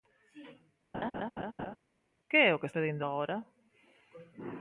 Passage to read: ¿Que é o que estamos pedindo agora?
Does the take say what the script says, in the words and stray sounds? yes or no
no